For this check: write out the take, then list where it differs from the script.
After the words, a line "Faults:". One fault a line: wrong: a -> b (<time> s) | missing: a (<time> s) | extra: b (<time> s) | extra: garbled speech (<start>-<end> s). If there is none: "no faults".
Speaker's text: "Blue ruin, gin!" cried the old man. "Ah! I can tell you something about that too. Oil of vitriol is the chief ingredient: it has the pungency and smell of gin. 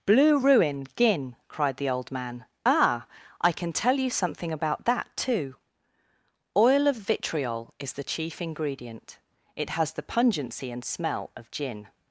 "Blue ruin, gin!" cried the old man. "Ah! I can tell you something about that too. Oil of vitriol is the chief ingredient: it has the pungency and smell of gin.
Faults:
no faults